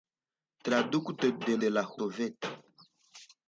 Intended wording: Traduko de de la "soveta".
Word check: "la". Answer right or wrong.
right